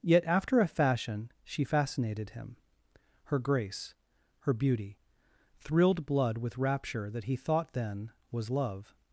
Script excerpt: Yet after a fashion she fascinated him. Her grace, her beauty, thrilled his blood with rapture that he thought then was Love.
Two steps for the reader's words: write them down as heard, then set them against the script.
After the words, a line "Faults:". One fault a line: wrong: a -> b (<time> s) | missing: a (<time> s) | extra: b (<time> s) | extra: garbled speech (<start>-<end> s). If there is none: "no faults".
Yet after a fashion she fascinated him. Her grace, her beauty, thrilled blood with rapture that he thought then was Love.
Faults:
missing: his (6.1 s)